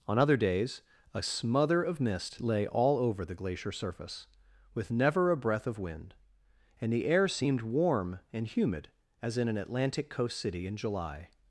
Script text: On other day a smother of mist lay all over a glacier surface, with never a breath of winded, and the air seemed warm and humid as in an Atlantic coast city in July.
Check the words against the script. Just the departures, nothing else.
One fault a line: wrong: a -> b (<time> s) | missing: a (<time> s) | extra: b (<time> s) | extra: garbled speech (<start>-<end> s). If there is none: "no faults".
wrong: day -> days (0.4 s)
wrong: a -> the (3.2 s)
wrong: winded -> wind (5.8 s)